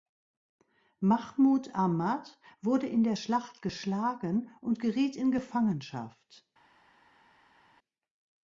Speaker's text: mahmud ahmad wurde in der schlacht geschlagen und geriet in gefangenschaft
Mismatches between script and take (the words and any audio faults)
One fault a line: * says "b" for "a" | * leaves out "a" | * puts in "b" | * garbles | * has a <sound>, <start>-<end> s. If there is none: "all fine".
all fine